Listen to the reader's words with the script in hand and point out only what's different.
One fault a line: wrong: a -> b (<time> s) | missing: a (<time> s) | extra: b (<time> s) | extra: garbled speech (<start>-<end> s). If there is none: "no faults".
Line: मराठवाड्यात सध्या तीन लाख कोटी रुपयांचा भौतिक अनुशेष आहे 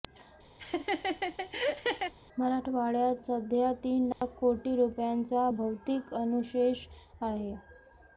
no faults